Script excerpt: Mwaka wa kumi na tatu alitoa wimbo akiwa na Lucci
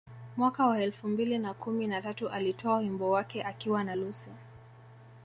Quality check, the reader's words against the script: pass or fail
fail